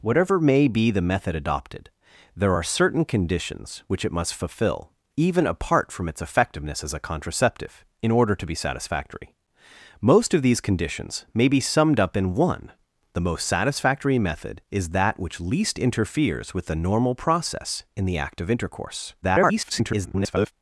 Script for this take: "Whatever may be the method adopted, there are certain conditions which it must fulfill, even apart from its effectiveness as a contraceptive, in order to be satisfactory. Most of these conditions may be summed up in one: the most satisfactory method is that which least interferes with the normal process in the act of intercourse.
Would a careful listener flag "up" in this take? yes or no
no